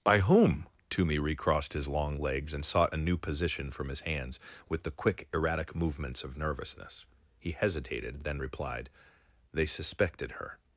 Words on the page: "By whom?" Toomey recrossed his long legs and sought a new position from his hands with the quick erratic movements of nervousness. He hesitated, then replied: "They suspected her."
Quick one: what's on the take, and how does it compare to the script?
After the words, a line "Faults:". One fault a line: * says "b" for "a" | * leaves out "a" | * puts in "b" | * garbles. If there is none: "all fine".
"By whom?" Toomey recrossed his long legs and sought a new position from his hands with the quick erratic movements of nervousness. He hesitated, then replied: "They suspected her."
Faults:
all fine